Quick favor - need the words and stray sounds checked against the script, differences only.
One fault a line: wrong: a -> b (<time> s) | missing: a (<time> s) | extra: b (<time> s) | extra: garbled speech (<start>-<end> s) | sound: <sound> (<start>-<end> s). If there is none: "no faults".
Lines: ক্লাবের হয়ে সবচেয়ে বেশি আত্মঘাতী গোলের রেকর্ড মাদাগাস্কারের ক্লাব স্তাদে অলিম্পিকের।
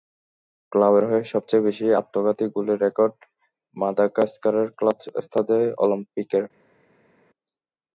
no faults